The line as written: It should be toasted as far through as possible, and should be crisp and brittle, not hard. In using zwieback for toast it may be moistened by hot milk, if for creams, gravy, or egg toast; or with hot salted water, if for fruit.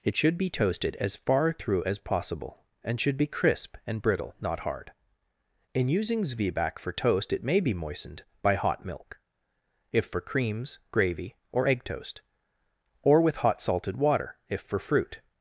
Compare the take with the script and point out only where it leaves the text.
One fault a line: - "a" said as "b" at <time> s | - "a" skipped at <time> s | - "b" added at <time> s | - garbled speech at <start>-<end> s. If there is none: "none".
none